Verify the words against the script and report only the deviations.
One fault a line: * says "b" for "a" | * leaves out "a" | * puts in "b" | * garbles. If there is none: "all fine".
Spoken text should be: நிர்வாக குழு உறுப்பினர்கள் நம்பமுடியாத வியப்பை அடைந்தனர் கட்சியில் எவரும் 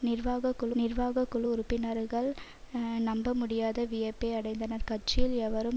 * puts in "நிர்வாக குழு"